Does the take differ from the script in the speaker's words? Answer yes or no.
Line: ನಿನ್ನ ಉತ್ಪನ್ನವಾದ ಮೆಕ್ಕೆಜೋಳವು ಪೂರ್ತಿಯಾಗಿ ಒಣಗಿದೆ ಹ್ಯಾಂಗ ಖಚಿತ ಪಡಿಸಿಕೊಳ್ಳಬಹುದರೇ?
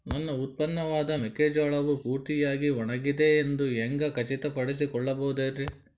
yes